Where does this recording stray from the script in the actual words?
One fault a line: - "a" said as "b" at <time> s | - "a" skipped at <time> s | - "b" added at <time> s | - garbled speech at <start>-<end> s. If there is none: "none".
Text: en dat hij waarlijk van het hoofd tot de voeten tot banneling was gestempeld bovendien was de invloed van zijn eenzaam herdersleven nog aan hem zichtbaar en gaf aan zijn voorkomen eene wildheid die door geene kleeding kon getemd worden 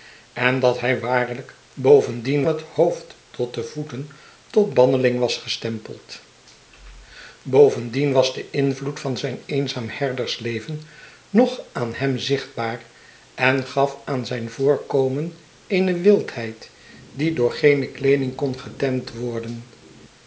- "van" said as "bovendien" at 1.7 s